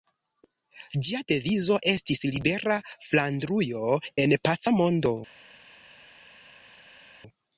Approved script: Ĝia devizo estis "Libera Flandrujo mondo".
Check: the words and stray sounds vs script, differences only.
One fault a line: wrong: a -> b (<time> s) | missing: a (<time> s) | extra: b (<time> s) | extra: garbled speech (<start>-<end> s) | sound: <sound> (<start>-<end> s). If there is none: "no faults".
extra: en paca (4.2 s)